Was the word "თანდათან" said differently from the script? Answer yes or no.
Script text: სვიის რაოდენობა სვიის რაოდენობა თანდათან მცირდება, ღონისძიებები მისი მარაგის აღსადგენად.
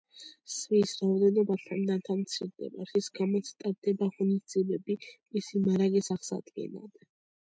yes